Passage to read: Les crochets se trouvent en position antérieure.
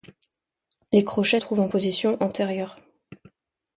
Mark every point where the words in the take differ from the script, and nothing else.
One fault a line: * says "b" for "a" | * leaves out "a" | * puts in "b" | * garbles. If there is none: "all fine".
* leaves out "se"